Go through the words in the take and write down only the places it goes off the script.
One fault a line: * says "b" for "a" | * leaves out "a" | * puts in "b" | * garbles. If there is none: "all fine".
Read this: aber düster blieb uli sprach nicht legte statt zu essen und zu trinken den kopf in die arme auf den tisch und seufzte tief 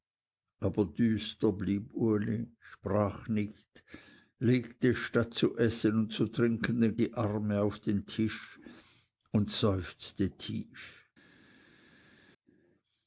* leaves out "kopf in"